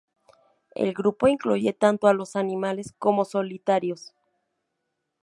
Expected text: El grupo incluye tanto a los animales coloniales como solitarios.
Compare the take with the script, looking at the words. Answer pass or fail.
fail